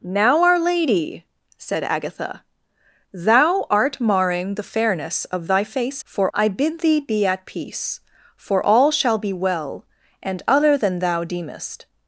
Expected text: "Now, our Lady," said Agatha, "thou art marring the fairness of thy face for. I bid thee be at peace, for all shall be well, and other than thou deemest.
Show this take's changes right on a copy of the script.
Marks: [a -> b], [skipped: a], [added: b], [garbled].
"Now, our Lady," said Agatha, "thou art marring the fairness of thy face for. I bid thee be at peace, for all shall be well, and other than thou deemest.